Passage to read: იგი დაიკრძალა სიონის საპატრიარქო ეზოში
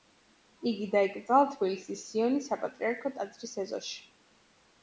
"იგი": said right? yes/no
yes